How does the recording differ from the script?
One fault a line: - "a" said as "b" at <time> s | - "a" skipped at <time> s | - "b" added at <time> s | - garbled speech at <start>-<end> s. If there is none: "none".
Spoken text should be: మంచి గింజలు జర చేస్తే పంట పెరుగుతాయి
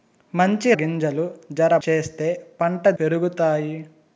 none